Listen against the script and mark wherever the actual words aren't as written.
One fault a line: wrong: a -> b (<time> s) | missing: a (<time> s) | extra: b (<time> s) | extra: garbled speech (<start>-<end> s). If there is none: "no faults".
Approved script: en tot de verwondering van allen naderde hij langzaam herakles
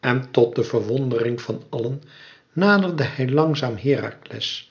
no faults